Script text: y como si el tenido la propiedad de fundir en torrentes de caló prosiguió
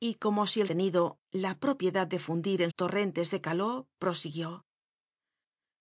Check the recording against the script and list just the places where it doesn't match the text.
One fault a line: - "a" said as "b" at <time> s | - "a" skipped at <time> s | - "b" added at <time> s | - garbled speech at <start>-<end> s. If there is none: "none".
none